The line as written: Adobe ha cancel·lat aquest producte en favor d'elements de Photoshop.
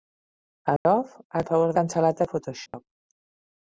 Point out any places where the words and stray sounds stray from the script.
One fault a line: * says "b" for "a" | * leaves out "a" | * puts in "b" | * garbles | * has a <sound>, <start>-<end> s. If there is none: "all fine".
* has a dropout, 0.8-0.9 s
* leaves out "cancel·lat aquest producte"
* says "cancel·lat" for "d'elements"
* has a dropout, 2.7-2.7 s